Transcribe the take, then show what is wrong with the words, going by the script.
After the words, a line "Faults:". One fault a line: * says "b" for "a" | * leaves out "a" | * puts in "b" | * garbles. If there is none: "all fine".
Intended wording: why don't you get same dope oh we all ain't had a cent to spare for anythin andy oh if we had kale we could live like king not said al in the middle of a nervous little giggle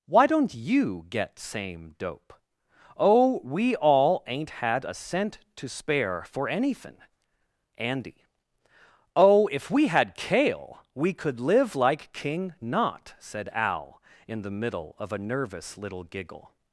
why don't you get same dope oh we all ain't had a cent to spare for anythin andy oh if we had kale we could live like king not said al in the middle of a nervous little giggle
Faults:
all fine